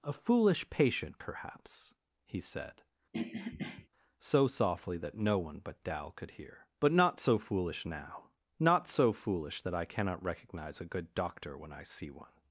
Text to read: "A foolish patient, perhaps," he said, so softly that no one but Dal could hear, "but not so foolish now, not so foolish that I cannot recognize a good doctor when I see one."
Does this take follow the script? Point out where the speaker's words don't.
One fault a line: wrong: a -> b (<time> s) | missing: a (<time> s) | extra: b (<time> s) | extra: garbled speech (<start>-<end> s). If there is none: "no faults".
no faults